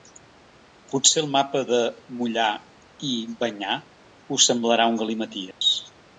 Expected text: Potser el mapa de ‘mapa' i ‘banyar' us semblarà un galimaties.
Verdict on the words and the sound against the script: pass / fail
fail